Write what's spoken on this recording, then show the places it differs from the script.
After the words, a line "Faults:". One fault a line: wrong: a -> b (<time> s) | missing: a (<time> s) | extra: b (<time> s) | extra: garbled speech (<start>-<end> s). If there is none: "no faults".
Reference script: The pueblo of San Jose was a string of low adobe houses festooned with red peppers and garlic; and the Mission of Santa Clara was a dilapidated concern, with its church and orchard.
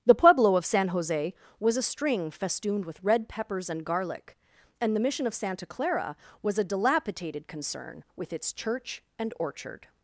The pueblo of San Jose was a string festooned with red peppers and garlic; and the Mission of Santa Clara was a dilapidated concern, with its church and orchard.
Faults:
missing: of low adobe houses (2.3 s)